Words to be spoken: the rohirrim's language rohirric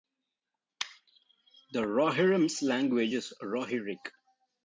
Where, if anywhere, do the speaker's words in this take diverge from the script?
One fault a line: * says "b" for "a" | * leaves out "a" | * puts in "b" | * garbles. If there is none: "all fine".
* puts in "is"